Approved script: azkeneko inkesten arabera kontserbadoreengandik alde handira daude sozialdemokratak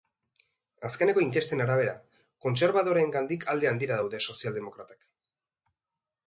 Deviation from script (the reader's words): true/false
false